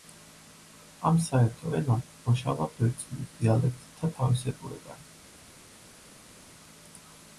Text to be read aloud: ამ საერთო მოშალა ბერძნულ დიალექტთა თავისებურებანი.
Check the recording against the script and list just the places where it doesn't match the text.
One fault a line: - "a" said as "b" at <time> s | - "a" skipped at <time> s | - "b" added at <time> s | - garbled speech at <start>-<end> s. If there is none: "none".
- "ენამ" added at 1.8 s